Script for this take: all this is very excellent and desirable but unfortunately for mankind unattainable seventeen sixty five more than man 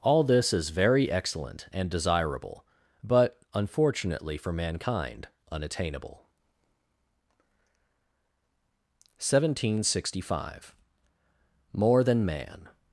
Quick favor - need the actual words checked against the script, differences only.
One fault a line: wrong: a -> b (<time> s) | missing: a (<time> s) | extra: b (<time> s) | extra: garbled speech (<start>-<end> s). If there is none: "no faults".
no faults